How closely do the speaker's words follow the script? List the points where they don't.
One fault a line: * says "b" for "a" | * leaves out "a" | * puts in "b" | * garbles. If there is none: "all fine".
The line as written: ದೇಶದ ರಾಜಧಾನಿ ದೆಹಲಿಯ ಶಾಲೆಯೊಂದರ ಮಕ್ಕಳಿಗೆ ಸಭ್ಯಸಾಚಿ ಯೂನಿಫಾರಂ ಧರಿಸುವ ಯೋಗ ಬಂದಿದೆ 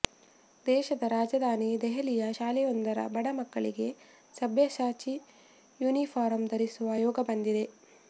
* puts in "ಬಡ"